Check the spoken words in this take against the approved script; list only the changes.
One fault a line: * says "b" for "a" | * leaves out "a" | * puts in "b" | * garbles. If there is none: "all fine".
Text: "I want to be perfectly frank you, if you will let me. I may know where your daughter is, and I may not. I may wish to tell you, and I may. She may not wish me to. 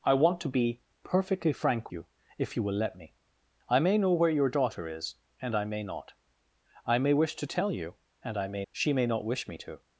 all fine